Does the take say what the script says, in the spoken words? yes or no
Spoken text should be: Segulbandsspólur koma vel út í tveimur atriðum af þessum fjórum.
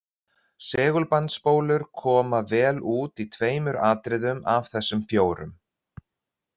yes